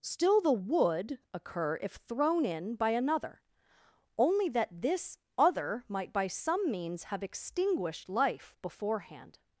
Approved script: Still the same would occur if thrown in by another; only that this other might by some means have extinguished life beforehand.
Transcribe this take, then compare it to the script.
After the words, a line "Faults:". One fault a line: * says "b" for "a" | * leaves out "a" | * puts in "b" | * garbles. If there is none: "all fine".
Still the would occur if thrown in by another; only that this other might by some means have extinguished life beforehand.
Faults:
* leaves out "same"